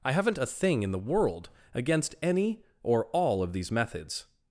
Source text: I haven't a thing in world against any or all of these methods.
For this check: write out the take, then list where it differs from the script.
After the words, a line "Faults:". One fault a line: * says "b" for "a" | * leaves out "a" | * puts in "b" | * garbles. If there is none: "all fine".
I haven't a thing in the world against any or all of these methods.
Faults:
* puts in "the"